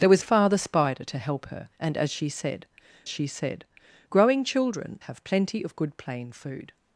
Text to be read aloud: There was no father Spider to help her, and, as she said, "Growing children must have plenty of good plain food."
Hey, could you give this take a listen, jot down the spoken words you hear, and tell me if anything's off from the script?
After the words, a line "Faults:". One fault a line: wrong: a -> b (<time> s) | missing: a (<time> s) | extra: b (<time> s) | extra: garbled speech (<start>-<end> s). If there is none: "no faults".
There was father Spider to help her, and, as she said she said, "Growing children have plenty of good plain food."
Faults:
missing: no (0.2 s)
extra: she said (3.1 s)
missing: must (5.0 s)